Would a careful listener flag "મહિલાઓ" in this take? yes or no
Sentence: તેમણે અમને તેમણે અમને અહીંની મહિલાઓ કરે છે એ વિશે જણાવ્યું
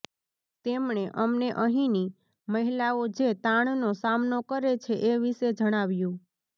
yes